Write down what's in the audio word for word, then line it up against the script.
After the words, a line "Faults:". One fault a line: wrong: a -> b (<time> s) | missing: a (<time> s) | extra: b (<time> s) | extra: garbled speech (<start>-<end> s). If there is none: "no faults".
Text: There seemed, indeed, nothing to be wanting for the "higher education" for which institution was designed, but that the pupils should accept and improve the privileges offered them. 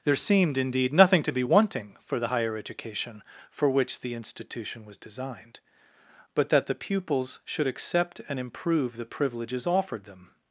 There seemed, indeed, nothing to be wanting for the "higher education" for which the institution was designed, but that the pupils should accept and improve the privileges offered them.
Faults:
extra: the (4.0 s)